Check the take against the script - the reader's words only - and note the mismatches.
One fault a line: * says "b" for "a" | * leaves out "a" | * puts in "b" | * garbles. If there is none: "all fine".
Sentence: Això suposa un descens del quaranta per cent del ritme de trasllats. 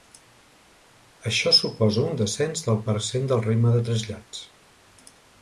* leaves out "quaranta"